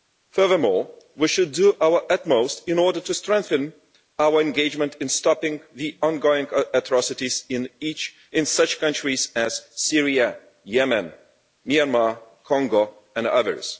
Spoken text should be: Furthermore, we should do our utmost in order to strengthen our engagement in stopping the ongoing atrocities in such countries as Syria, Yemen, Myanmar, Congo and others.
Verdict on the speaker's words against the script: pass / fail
pass